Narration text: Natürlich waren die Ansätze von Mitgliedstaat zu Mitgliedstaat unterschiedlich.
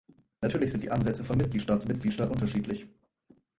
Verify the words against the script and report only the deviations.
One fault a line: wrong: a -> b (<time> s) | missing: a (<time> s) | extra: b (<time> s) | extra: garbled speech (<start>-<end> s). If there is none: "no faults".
wrong: waren -> sind (0.7 s)